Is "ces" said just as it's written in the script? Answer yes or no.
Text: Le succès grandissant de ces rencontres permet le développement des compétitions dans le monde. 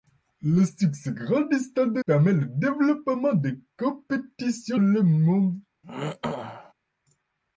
no